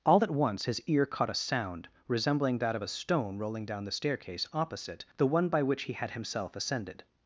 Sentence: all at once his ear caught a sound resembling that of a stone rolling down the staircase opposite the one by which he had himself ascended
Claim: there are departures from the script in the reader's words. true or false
false